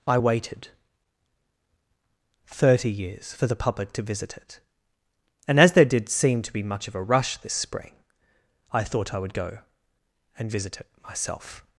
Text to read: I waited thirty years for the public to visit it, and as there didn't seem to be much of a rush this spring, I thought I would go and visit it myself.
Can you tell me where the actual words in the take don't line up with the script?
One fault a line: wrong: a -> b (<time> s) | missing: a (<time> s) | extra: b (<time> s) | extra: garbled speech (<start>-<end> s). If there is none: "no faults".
wrong: didn't -> did (5.9 s)